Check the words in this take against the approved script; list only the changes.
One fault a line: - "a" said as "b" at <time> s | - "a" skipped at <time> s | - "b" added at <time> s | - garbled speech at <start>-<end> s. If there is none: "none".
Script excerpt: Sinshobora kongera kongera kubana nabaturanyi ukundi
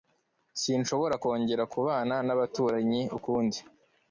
- "kongera" skipped at 1.6 s